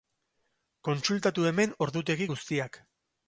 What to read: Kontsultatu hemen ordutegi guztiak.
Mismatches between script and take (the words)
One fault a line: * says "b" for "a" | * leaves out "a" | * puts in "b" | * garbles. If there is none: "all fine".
all fine